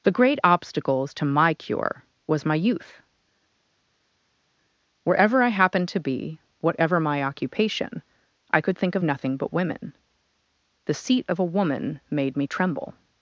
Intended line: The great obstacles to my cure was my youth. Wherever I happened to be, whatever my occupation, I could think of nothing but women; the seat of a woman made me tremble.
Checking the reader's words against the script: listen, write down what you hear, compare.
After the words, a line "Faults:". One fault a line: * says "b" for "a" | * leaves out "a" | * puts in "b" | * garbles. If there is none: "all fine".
The great obstacles to my cure was my youth. Wherever I happened to be, whatever my occupation, I could think of nothing but women; the seat of a woman made me tremble.
Faults:
all fine